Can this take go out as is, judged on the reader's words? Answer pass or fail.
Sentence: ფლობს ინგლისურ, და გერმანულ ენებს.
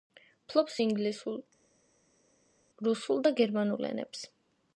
fail